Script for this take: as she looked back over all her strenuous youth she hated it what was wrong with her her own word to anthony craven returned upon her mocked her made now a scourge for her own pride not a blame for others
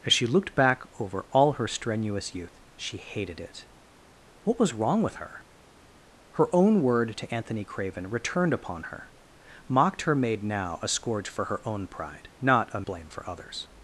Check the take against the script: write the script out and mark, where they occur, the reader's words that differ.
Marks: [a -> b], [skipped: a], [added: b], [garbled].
as she looked back over all her strenuous youth she hated it what was wrong with her her own word to anthony craven returned upon her mocked her made now a scourge for her own pride not a blame for others